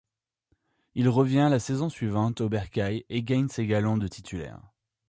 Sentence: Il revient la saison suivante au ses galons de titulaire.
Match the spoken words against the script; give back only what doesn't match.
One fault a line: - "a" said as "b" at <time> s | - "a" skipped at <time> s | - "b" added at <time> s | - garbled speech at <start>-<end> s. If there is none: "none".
- "bercail et gagne" added at 2.5 s